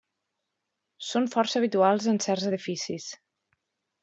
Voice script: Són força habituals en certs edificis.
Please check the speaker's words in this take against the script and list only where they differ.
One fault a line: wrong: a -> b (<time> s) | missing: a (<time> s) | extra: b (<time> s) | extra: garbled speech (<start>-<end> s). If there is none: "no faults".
no faults